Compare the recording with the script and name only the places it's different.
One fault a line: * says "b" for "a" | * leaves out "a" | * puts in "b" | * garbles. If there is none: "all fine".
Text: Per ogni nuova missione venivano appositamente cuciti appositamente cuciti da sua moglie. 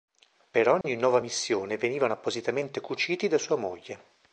* leaves out "appositamente cuciti"